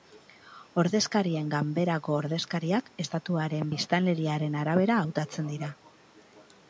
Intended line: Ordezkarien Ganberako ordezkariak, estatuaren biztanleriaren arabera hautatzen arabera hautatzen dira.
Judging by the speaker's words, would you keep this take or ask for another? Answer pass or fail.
fail